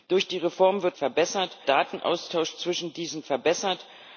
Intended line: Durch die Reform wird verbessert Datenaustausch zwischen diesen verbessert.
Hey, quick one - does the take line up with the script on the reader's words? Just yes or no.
yes